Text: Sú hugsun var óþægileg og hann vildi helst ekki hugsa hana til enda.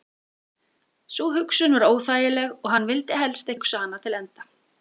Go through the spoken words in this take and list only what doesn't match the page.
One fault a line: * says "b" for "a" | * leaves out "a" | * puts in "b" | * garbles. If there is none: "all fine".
* leaves out "ekki"